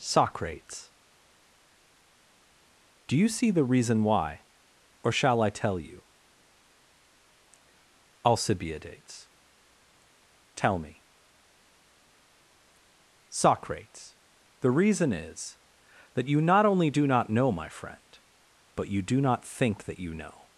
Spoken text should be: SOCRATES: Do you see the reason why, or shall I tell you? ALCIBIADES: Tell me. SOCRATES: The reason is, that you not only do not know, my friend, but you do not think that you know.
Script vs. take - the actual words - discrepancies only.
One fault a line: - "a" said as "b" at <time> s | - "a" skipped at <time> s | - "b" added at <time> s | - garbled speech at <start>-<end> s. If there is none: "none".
none